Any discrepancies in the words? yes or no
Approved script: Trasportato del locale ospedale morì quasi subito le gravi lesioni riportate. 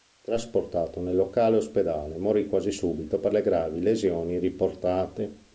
yes